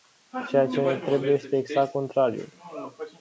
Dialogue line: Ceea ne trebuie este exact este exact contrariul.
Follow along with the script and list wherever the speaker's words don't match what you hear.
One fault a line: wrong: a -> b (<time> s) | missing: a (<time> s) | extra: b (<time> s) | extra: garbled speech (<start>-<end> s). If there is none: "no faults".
extra: ce (0.7 s)
missing: este exact (1.9 s)